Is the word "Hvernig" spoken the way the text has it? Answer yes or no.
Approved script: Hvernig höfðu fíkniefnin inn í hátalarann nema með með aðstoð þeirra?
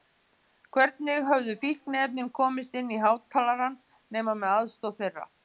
yes